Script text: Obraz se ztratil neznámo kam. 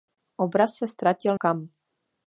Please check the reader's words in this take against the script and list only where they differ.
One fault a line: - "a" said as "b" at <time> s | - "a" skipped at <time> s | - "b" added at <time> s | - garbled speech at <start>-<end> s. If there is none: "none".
- "neznámo" skipped at 1.4 s